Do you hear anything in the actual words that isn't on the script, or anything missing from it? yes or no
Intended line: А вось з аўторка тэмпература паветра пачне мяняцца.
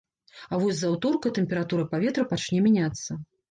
no